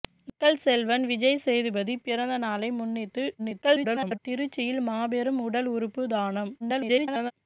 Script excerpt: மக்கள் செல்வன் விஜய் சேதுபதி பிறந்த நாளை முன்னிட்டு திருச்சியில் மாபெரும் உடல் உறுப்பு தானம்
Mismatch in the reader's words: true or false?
true